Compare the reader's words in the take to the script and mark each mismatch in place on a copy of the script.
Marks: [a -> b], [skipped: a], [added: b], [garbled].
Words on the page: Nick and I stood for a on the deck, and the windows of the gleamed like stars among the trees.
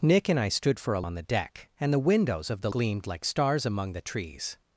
Nick and I stood for a on the deck, and the windows of the gleamed like stars among the trees.